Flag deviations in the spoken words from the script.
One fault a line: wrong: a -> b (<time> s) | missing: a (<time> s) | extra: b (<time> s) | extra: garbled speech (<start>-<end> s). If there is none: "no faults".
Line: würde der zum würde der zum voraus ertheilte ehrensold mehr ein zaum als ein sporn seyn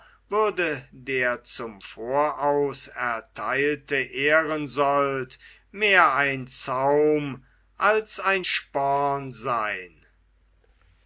missing: würde der zum (1.8 s)